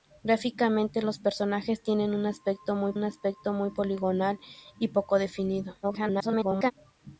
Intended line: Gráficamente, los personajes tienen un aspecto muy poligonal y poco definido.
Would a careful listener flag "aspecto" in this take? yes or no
no